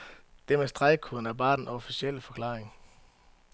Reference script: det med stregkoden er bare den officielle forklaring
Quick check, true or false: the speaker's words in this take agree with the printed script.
true